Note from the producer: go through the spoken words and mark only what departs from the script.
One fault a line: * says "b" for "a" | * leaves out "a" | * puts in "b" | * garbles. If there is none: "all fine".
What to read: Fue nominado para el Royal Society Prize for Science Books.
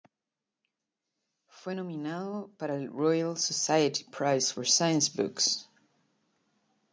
all fine